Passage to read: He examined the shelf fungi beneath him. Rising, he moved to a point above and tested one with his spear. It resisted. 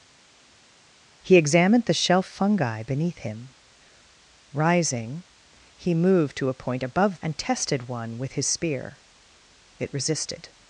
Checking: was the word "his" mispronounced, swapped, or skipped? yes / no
no